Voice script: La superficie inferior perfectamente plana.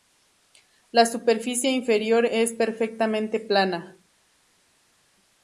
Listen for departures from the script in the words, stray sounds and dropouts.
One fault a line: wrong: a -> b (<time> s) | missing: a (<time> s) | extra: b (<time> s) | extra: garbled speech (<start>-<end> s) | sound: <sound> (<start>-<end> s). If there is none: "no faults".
extra: es (2.2 s)